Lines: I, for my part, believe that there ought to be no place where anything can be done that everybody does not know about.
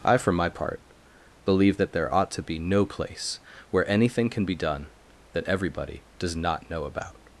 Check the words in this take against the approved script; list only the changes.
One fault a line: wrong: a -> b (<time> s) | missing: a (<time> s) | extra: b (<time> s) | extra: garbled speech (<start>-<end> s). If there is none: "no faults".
no faults